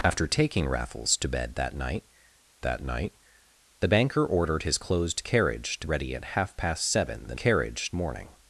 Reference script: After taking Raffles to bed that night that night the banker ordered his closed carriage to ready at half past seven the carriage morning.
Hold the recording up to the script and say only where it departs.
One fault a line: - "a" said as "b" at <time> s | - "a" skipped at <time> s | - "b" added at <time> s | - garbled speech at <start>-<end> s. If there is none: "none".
none